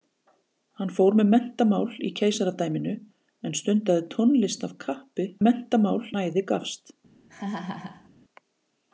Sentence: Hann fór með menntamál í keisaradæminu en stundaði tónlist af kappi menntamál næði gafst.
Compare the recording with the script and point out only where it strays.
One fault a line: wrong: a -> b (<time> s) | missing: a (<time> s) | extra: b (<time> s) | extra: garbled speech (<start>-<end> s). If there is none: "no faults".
no faults